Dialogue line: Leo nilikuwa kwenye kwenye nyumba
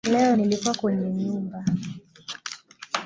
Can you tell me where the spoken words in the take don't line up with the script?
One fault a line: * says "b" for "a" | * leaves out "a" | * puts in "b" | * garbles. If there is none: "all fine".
* leaves out "kwenye"